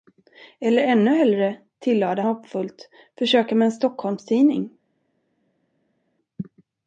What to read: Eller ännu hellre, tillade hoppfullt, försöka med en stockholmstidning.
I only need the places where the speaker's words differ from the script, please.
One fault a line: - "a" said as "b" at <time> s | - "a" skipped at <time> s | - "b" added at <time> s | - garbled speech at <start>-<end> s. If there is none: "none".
none